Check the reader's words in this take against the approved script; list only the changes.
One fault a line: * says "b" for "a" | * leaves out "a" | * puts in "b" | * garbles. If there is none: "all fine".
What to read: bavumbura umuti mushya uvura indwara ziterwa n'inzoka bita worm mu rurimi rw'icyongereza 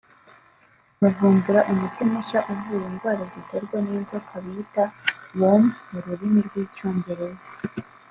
all fine